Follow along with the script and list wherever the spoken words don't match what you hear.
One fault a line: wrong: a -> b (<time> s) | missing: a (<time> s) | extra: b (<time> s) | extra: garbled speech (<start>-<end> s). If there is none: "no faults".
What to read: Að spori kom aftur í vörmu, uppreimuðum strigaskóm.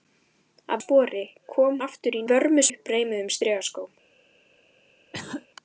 no faults